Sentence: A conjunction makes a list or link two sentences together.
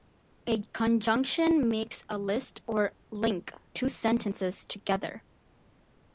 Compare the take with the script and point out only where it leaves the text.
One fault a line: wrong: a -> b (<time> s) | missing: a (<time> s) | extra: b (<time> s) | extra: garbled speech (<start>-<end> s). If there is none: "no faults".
no faults